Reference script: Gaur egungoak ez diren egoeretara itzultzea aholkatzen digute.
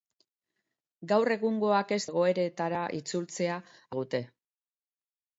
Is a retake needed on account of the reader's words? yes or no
yes